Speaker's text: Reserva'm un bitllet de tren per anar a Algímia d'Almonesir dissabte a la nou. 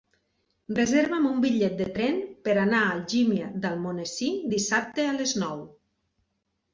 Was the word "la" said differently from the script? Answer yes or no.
yes